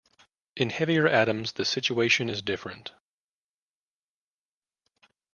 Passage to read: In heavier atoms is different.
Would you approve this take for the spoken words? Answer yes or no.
no